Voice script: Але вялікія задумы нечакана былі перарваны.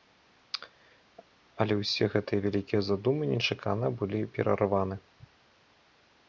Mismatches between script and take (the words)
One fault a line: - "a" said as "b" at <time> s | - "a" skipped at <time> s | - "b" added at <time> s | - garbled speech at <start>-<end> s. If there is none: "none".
- "ўсе гэтыя" added at 1.8 s